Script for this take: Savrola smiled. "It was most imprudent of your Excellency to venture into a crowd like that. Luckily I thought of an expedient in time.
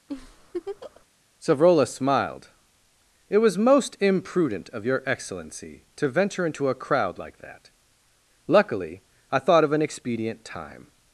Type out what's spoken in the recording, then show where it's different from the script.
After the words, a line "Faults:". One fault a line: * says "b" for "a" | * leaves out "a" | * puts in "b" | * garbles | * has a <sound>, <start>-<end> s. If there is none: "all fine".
Savrola smiled. "It was most imprudent of your Excellency to venture into a crowd like that. Luckily I thought of an expedient time.
Faults:
* has a laugh, 0.1-1.0 s
* leaves out "in"